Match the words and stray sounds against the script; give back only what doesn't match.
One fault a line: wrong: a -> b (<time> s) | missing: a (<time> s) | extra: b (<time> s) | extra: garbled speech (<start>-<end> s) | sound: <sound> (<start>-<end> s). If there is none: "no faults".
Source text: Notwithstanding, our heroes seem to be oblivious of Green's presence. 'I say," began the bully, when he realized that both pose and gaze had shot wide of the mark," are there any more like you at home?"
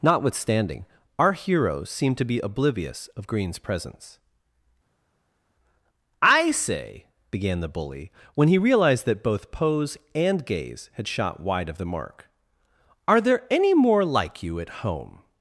no faults